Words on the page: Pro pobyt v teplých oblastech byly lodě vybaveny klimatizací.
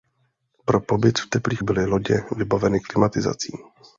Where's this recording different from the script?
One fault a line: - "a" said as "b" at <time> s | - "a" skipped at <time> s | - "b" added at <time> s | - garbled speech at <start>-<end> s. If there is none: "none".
- "oblastech" skipped at 1.6 s